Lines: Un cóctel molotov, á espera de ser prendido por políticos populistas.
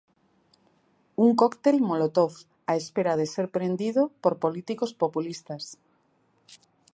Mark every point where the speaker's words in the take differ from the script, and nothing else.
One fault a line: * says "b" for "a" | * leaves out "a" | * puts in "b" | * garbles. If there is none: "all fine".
all fine